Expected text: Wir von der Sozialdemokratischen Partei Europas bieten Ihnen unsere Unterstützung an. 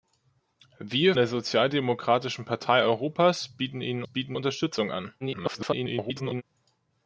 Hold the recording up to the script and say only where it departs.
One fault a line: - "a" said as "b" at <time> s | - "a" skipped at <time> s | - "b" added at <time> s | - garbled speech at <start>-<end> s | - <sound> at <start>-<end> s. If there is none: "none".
- "von" skipped at 1.1 s
- "unsere" said as "bieten" at 4.0 s
- garbled speech at 5.2-6.4 s